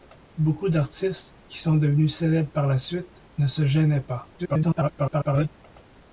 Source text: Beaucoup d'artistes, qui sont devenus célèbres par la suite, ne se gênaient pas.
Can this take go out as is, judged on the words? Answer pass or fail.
fail